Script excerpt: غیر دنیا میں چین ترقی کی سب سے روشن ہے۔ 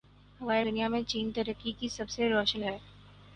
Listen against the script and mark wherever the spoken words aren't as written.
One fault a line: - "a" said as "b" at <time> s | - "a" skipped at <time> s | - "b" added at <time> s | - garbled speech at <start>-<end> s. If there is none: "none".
none